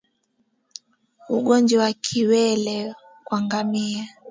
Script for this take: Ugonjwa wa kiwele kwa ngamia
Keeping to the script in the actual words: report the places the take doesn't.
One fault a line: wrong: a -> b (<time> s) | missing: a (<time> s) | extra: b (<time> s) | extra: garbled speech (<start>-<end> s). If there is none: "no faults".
no faults